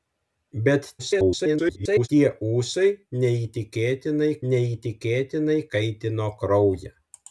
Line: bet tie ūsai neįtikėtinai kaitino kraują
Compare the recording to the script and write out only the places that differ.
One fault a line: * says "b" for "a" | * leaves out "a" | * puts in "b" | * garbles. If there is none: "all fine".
* garbles
* puts in "neįtikėtinai"